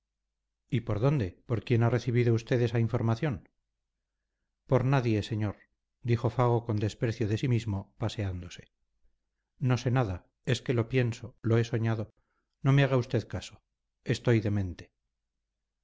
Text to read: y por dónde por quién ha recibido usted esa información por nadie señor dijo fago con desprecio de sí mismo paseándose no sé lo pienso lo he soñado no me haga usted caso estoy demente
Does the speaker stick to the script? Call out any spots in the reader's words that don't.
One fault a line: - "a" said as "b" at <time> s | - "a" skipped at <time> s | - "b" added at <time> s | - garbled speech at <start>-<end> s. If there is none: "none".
- "nada es que" added at 9.9 s